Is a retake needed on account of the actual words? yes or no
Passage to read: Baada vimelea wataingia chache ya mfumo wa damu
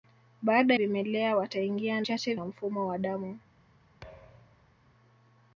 no